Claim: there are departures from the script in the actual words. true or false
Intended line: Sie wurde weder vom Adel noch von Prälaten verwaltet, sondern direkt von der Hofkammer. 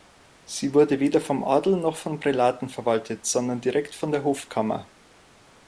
false